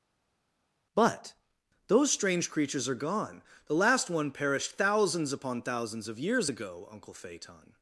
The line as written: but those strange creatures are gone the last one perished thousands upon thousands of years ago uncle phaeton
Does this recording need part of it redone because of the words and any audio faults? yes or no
no